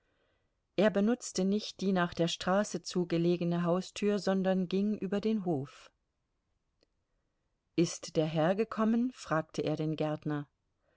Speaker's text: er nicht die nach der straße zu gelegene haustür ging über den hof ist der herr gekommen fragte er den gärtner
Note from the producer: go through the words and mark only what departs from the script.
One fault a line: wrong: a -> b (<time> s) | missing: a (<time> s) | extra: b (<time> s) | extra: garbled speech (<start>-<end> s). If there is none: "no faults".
extra: benutzte (0.9 s)
extra: sondern (4.2 s)